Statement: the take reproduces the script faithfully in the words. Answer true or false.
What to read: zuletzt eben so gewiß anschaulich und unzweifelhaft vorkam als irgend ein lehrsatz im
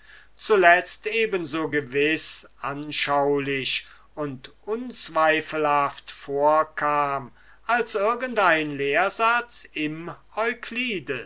true